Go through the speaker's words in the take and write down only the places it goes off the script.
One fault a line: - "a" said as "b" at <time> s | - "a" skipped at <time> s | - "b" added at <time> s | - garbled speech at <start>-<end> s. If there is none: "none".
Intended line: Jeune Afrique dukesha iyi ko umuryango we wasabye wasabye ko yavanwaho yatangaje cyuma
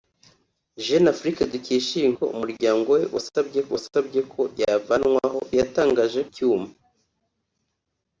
none